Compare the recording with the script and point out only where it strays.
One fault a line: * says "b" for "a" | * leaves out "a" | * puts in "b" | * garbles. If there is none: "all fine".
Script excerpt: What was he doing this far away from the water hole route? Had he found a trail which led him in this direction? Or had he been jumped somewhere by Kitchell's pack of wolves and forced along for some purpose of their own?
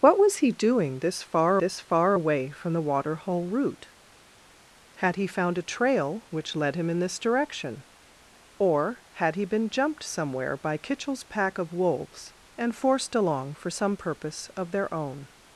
* puts in "this far"